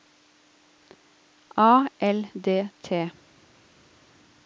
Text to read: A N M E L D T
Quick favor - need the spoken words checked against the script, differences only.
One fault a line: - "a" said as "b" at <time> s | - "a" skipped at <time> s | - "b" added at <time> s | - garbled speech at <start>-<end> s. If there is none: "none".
- "N M E" skipped at 1.9 s